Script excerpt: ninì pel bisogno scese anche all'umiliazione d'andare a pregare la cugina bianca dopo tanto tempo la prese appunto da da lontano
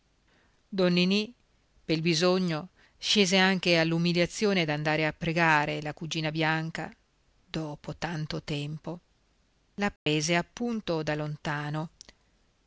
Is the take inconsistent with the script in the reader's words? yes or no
yes